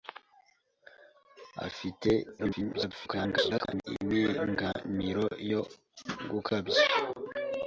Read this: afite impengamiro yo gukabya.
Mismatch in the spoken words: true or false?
true